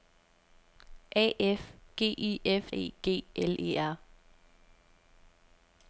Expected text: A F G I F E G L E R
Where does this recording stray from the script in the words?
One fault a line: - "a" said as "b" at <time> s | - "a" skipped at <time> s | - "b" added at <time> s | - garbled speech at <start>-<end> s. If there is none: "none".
none